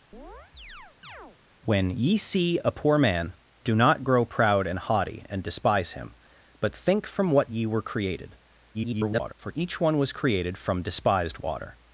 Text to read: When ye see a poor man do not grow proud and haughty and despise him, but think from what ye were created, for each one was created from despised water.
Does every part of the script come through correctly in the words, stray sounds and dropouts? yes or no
no